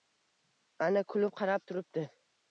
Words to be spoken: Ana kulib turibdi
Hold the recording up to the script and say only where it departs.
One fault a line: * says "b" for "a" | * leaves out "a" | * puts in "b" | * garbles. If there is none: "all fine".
* puts in "qarab"